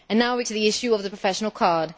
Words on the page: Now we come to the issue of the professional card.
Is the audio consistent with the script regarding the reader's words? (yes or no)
no